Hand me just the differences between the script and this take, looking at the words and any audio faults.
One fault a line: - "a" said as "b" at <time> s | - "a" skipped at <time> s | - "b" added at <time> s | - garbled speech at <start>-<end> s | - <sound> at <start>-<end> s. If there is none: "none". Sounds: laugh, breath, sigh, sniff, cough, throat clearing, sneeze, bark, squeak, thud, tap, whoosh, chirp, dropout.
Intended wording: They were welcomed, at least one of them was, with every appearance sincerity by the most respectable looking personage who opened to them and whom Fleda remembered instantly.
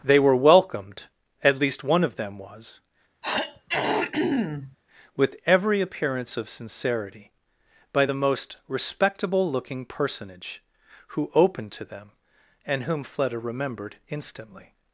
- throat clearing at 3.2-4.8 s
- "of" added at 6.4 s